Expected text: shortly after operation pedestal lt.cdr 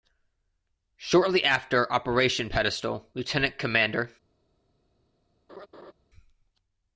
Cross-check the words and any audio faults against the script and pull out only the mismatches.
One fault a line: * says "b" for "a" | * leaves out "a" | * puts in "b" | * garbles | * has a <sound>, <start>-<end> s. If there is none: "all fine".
* has a laugh, 5.5-5.9 s